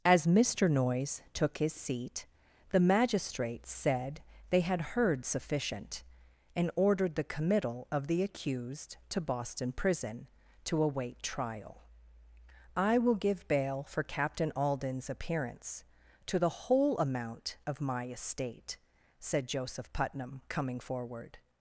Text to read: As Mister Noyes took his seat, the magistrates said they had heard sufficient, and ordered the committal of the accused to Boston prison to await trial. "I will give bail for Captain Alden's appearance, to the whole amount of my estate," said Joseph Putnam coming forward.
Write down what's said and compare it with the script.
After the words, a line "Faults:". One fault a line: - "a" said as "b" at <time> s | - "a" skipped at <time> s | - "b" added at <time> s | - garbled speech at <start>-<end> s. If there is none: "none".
As Mister Noyes took his seat, the magistrates said they had heard sufficient, and ordered the committal of the accused to Boston prison to await trial. "I will give bail for Captain Alden's appearance, to the whole amount of my estate," said Joseph Putnam coming forward.
Faults:
none